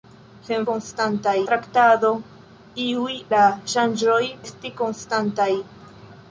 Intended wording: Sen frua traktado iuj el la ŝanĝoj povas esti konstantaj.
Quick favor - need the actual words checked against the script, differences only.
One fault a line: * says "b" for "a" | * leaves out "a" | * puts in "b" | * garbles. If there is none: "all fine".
* says "konstantaj" for "frua"
* leaves out "el"
* leaves out "povas"